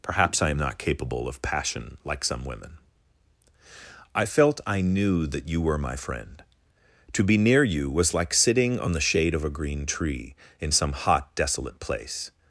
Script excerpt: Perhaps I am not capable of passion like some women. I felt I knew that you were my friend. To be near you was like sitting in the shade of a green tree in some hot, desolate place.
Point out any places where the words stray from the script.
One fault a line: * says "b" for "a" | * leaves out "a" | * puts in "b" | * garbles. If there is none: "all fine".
* says "on" for "in"